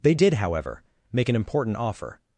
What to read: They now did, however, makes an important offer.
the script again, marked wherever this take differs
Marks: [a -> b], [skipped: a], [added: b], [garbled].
They [skipped: now] did, however, [makes -> make] an important offer.